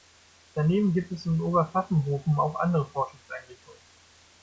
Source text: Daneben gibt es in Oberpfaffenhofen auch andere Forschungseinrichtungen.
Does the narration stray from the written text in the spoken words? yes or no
no